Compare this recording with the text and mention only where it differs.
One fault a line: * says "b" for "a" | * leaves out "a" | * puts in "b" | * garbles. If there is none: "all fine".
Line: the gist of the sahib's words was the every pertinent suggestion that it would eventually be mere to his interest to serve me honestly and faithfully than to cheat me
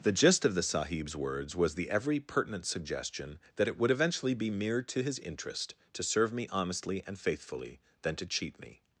all fine